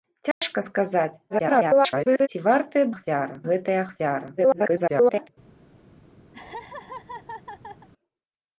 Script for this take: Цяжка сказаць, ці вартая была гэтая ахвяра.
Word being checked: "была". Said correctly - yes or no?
no